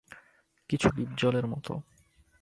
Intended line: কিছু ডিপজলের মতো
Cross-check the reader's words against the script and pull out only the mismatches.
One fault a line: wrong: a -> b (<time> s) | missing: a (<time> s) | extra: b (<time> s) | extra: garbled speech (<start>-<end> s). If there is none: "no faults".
no faults